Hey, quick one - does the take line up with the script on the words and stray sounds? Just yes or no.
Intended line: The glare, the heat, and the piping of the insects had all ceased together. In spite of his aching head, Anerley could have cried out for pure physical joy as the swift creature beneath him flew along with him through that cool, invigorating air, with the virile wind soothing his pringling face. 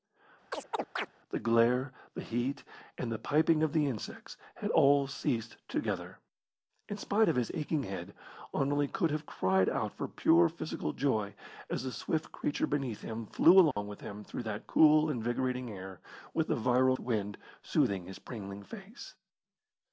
no